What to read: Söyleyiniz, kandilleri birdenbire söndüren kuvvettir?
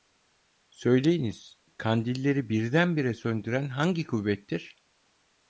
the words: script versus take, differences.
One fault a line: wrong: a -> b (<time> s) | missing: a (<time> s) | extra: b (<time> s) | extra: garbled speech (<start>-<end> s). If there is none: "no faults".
extra: hangi (3.7 s)